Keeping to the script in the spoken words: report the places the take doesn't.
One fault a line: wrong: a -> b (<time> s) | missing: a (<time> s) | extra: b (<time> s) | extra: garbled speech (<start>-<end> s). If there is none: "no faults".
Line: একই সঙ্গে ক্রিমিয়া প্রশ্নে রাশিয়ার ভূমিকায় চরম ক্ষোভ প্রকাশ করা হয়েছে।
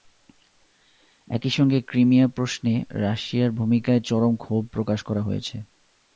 no faults